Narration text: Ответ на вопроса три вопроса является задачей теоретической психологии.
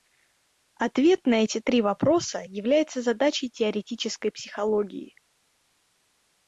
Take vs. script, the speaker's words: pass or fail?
fail